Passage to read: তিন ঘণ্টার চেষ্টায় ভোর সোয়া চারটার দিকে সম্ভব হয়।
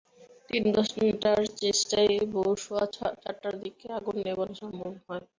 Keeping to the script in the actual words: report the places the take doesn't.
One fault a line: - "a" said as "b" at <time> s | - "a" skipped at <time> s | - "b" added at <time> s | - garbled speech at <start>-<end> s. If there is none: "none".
- "আগুন নেভানো" added at 4.0 s